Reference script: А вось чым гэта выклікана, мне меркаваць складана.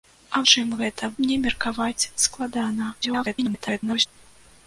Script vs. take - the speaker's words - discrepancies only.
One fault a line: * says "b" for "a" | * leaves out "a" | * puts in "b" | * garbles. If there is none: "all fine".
* leaves out "вось"
* leaves out "выклікана"
* garbles